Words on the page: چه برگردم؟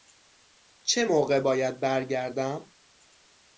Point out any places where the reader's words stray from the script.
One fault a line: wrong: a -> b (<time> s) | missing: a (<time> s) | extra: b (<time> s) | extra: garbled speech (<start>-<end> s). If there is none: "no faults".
extra: موقع باید (1.0 s)